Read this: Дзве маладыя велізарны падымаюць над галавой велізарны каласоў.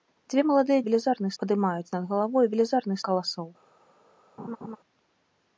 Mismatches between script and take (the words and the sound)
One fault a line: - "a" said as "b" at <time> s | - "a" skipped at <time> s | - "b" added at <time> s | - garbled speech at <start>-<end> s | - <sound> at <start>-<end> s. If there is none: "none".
- laugh at 4.4-4.8 s